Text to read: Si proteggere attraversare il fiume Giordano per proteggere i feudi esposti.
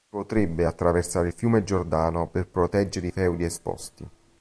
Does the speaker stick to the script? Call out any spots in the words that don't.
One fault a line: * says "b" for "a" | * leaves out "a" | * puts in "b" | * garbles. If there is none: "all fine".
* says "potrebbe" for "proteggere"